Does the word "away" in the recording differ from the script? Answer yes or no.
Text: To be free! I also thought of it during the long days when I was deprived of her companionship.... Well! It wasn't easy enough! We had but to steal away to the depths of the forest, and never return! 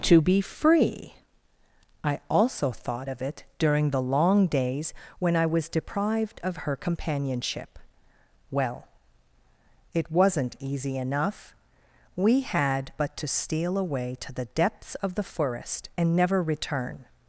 no